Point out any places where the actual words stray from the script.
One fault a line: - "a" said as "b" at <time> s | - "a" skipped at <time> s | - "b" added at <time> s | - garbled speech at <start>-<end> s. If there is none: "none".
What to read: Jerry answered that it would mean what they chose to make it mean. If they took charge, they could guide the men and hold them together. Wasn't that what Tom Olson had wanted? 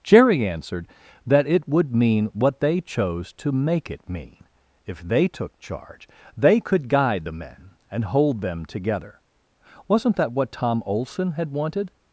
none